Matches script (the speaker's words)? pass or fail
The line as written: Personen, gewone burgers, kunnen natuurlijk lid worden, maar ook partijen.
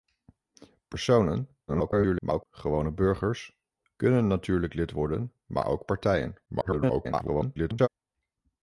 fail